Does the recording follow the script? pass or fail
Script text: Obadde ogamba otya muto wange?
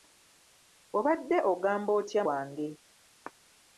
fail